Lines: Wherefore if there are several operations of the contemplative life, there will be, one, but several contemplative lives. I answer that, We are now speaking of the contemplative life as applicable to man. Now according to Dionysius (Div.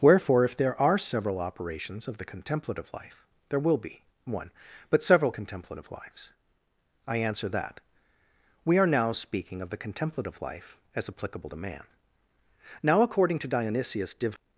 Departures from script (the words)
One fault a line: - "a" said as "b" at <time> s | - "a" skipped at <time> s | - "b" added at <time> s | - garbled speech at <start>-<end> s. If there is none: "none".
none